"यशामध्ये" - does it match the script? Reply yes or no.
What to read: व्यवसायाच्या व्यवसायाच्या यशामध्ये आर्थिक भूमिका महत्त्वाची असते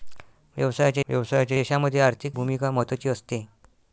yes